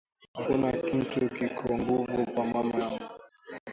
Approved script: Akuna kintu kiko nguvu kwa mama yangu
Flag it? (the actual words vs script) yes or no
no